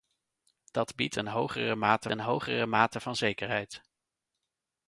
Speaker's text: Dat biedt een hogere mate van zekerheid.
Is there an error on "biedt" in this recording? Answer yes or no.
no